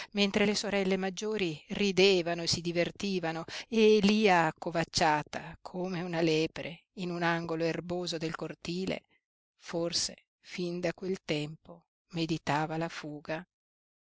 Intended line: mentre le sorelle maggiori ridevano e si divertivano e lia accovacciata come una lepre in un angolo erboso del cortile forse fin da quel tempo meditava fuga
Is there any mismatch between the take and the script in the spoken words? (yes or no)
yes